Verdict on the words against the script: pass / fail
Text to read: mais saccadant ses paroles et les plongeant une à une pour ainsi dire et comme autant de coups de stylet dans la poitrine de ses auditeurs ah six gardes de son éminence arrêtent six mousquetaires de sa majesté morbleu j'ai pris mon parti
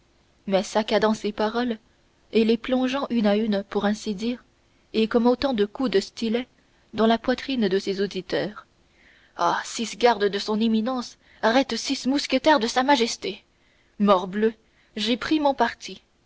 pass